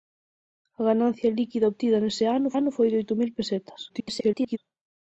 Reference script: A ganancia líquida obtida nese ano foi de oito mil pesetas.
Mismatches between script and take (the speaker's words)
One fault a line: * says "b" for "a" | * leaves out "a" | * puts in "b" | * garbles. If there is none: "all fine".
* puts in "ano"
* garbles